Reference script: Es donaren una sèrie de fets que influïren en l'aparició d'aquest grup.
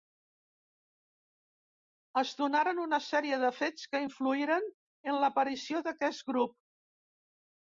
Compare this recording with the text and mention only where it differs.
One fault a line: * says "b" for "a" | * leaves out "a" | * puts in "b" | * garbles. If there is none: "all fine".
all fine